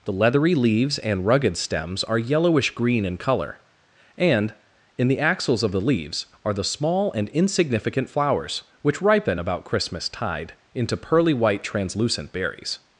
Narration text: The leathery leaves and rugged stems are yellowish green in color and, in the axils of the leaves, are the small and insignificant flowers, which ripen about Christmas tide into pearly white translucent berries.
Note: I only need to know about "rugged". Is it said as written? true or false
true